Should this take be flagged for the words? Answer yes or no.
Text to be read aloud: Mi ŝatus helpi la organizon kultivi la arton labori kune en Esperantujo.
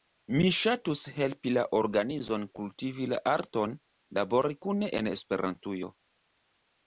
no